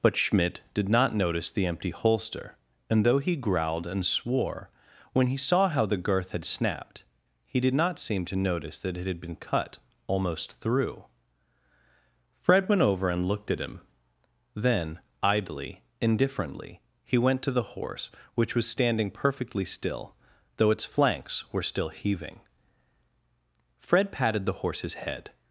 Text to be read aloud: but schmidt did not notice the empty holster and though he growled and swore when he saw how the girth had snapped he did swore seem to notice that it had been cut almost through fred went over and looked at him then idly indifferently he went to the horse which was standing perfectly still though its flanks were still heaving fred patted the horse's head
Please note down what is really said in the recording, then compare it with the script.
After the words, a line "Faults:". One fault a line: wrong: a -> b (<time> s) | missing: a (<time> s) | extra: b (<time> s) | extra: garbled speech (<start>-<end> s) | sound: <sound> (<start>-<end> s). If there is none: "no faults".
but schmidt did not notice the empty holster and though he growled and swore when he saw how the girth had snapped he did not seem to notice that it had been cut almost through fred went over and looked at him then idly indifferently he went to the horse which was standing perfectly still though its flanks were still heaving fred patted the horse's head
Faults:
wrong: swore -> not (7.7 s)